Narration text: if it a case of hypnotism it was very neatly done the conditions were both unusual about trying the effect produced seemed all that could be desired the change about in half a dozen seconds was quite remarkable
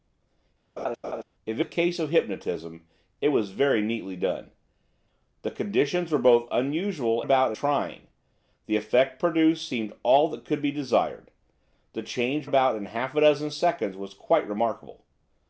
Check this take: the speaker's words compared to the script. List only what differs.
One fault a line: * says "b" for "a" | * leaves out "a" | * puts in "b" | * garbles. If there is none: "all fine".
all fine